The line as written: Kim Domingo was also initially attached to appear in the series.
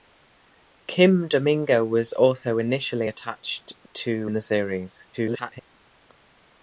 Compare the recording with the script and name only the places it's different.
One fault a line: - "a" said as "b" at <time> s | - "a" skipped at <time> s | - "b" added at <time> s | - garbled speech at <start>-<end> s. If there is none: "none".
- "appear" skipped at 4.3 s
- garbled speech at 5.1-5.6 s